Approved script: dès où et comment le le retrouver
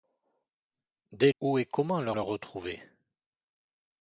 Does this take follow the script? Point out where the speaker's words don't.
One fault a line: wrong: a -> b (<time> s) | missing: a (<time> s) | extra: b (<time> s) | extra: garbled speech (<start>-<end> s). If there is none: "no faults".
no faults